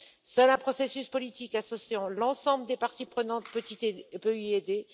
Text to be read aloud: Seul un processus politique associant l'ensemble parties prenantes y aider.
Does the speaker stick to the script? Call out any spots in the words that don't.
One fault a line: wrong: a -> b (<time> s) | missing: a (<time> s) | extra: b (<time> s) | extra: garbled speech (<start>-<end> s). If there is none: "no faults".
extra: des (2.7 s)
extra: peut (3.5 s)